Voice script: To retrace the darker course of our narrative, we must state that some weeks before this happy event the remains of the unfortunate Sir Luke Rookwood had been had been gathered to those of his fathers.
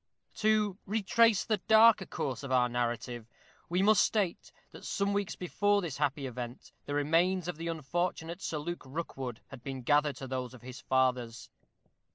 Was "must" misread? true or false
false